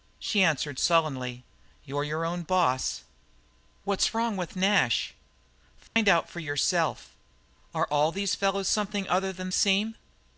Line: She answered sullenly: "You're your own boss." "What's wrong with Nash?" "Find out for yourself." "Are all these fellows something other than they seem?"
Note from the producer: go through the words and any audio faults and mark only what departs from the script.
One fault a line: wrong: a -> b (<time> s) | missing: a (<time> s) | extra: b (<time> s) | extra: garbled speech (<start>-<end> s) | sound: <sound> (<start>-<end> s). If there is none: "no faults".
sound: dropout (5.9-6.0 s)
missing: they (9.5 s)